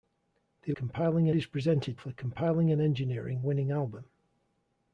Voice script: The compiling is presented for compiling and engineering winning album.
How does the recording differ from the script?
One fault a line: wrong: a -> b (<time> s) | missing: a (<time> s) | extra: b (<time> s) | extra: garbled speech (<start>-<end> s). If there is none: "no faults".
no faults